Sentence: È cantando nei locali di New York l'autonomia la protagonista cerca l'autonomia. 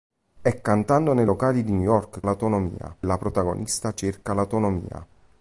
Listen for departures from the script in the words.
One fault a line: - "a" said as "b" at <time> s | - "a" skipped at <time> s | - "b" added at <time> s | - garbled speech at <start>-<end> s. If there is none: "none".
none